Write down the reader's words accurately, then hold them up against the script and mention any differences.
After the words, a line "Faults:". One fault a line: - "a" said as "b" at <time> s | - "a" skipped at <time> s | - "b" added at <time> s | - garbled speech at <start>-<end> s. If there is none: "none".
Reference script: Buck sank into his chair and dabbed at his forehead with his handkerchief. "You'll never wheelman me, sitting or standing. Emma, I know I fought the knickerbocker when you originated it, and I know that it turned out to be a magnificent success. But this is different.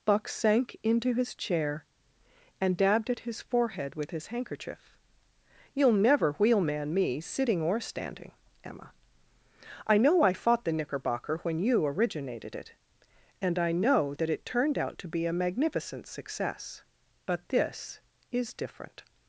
Buck sank into his chair and dabbed at his forehead with his handkerchief. "You'll never wheelman me, sitting or standing. Emma, I know I fought the knickerbocker when you originated it, and I know that it turned out to be a magnificent success. But this is different.
Faults:
none